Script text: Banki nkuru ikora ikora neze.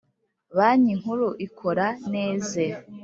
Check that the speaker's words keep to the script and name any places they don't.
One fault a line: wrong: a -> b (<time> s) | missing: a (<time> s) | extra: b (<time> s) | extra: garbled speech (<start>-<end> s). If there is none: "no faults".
missing: ikora (1.9 s)